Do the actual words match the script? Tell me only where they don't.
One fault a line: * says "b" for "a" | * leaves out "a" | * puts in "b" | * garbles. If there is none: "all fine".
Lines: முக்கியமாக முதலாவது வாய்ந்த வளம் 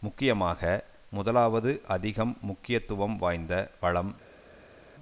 * puts in "அதிகம் முக்கியத்துவம்"